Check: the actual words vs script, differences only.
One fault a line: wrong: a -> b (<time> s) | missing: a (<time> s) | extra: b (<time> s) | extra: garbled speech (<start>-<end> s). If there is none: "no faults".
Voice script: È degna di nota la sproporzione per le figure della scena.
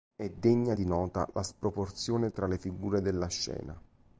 wrong: per -> tra (2.3 s)